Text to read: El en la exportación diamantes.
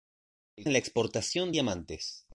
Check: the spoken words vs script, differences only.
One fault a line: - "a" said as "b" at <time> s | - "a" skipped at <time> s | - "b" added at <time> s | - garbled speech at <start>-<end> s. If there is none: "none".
none